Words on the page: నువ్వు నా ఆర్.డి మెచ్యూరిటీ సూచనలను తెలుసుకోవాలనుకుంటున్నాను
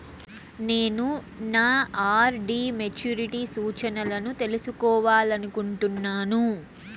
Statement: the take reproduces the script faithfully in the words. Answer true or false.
false